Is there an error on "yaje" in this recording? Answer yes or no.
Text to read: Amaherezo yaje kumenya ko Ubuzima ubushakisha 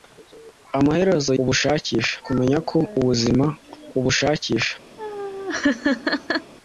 yes